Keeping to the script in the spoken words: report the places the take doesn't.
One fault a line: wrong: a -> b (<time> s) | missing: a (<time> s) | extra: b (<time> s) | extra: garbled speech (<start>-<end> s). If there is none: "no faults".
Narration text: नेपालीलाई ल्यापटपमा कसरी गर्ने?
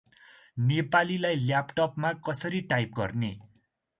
extra: टाइप (2.7 s)